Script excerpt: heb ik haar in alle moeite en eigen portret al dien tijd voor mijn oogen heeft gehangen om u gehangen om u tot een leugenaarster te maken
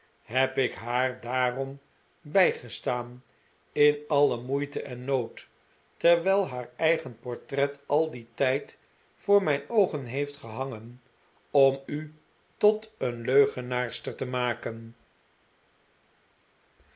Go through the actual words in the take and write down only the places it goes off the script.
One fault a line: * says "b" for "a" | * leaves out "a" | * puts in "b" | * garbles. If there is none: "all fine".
* puts in "daarom bijgestaan"
* puts in "nood terwijl haar"
* leaves out "gehangen om u"